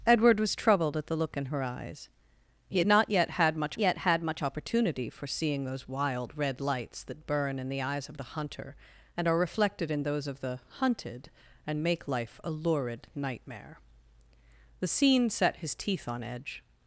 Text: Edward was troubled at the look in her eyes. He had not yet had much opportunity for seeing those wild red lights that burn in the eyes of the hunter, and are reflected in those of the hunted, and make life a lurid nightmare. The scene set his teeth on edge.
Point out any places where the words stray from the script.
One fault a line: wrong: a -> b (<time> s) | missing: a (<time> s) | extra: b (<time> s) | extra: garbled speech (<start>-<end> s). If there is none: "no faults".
extra: yet had much (3.8 s)